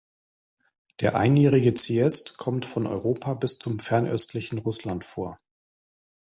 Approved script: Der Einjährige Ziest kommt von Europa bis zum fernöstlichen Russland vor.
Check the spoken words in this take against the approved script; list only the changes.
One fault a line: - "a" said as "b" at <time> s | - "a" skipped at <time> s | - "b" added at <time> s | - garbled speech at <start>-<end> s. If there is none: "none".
none